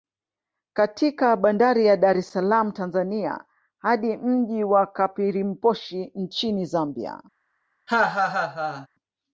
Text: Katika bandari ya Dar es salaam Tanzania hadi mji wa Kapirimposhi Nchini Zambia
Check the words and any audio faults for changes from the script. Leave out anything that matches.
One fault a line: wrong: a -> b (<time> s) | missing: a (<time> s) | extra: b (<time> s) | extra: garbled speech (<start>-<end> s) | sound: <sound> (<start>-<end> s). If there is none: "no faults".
sound: laugh (7.9-8.9 s)